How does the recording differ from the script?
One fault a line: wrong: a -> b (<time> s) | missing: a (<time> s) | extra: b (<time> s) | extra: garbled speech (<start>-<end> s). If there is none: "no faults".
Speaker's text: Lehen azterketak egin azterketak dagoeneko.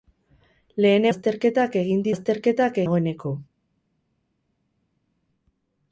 no faults